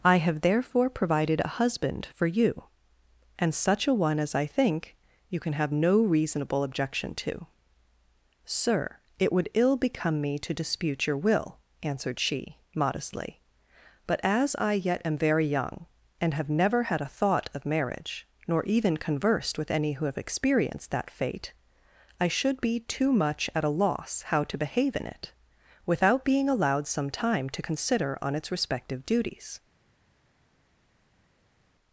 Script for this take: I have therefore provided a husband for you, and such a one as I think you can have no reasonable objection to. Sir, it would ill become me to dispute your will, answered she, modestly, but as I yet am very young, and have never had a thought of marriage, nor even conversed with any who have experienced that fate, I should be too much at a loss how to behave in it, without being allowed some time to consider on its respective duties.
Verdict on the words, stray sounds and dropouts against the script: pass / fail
pass